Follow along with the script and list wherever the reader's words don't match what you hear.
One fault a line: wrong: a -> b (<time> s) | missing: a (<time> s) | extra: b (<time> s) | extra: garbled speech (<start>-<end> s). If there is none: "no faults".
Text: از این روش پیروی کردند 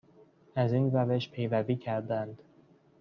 no faults